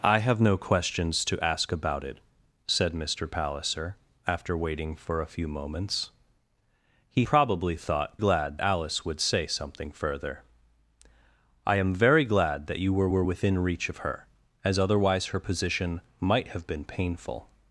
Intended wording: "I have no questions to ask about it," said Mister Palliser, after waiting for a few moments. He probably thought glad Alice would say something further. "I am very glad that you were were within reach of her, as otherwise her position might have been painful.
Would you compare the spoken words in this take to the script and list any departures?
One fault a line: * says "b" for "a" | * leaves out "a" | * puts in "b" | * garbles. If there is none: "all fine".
all fine